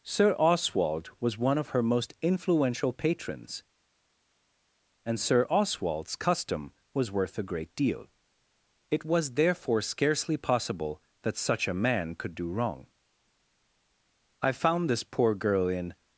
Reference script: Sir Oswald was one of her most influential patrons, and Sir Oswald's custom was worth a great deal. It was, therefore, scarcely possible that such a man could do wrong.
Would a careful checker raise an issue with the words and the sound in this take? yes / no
yes